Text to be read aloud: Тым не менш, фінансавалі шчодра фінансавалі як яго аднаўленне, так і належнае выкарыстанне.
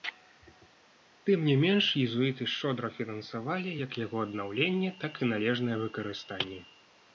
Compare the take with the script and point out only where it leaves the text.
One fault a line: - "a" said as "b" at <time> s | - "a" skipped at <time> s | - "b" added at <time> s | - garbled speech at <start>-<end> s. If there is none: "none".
- "фінансавалі" said as "езуіты" at 2.0 s